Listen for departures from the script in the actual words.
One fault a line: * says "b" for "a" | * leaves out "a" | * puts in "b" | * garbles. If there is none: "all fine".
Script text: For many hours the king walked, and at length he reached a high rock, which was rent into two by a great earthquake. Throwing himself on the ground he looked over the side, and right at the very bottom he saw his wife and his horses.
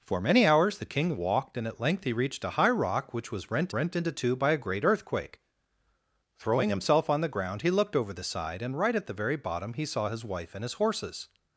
* puts in "rent"